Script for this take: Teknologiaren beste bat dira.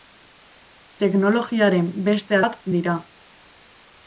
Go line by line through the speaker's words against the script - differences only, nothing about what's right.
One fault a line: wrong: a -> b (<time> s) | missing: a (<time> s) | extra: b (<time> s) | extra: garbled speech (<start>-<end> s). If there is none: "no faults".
no faults